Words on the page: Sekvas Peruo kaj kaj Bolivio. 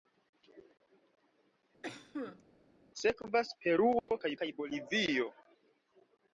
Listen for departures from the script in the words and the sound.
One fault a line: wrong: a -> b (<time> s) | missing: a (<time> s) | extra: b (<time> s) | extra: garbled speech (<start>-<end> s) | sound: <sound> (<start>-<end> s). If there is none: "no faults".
sound: cough (1.8-2.4 s)
sound: dropout (4.0-4.1 s)